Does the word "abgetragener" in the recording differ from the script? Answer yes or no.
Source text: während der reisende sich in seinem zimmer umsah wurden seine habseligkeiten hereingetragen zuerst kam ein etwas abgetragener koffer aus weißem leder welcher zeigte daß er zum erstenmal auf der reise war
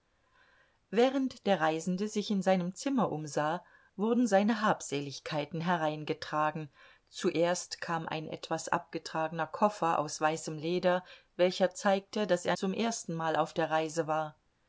no